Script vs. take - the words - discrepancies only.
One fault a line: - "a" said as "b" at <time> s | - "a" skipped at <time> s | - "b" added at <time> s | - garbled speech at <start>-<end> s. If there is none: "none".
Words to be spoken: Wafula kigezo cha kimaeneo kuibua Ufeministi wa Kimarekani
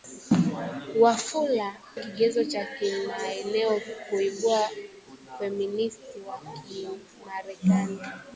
none